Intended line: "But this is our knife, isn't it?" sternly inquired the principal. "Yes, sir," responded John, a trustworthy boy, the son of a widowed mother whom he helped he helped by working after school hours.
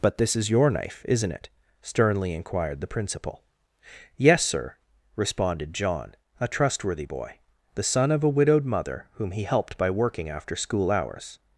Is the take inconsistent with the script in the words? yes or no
yes